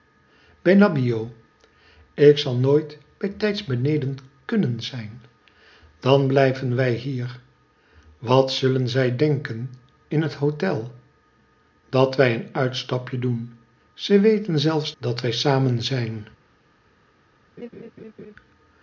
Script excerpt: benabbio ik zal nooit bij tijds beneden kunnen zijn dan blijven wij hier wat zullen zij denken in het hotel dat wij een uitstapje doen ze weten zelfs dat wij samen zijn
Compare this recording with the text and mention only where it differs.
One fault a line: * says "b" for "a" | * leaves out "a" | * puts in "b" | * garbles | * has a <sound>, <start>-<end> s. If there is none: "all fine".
* has a laugh, 17.6-18.3 s